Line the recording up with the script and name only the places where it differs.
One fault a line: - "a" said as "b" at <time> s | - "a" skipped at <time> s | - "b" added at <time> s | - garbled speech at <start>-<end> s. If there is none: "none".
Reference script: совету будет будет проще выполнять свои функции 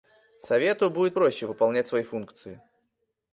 - "будет" skipped at 1.2 s